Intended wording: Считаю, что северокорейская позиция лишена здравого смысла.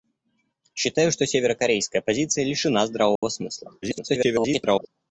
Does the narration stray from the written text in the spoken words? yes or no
yes